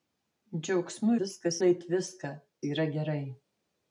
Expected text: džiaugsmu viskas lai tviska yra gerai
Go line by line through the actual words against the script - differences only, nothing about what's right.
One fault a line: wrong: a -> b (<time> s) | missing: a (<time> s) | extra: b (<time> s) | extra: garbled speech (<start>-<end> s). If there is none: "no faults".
no faults